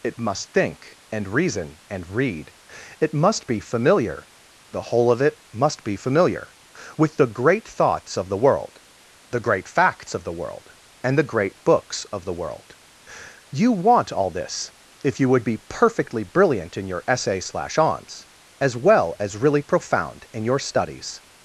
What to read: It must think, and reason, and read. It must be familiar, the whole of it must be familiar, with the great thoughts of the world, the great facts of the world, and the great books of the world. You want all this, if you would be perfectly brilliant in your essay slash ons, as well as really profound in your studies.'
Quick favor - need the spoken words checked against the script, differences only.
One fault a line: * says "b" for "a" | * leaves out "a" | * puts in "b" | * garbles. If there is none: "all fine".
all fine